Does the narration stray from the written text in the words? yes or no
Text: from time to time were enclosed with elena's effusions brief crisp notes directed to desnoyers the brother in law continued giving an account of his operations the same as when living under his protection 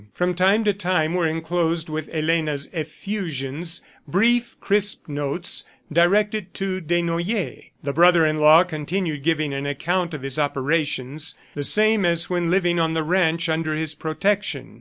yes